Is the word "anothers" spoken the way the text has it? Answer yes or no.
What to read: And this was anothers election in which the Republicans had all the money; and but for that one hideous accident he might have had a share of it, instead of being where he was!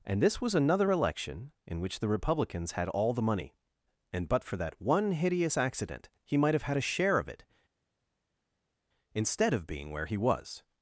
no